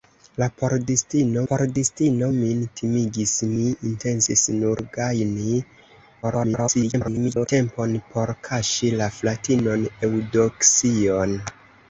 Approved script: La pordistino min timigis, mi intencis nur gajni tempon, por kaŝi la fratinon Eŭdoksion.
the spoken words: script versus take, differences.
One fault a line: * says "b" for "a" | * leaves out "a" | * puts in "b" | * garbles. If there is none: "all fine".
* puts in "pordistino"
* garbles